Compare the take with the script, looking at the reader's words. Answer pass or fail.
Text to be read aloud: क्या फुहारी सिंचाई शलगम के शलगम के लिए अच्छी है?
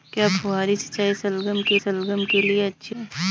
pass